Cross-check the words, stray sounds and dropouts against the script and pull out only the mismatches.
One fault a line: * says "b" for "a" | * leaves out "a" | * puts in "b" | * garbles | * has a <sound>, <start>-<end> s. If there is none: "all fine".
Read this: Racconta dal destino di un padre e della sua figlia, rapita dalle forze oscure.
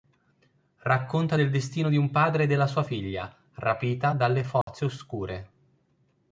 * says "del" for "dal"
* has a dropout, 4.6-4.7 s